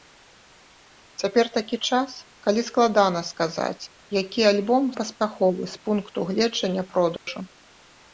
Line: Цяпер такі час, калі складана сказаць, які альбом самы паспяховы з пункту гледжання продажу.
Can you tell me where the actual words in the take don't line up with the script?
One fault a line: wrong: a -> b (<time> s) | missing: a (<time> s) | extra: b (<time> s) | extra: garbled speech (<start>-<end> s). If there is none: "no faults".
missing: самы (4.8 s)